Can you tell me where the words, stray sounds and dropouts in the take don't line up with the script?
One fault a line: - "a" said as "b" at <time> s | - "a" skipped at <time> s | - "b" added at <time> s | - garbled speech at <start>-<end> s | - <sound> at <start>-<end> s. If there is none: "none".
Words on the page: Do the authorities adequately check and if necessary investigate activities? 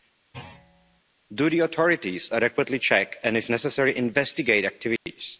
- thud at 0.3-1.0 s
- dropout at 5.0-5.1 s